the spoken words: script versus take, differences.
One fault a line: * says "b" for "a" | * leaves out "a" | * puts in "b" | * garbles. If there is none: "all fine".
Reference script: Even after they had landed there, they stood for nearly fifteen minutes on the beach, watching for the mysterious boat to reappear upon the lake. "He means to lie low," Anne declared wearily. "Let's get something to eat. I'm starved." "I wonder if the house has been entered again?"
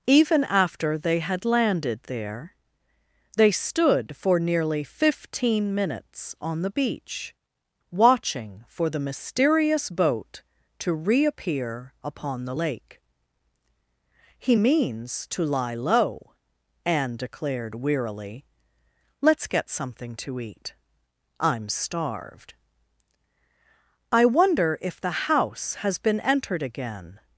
all fine